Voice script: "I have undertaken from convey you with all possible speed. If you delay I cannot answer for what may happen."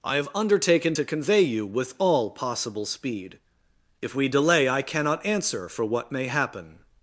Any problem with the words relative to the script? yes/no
yes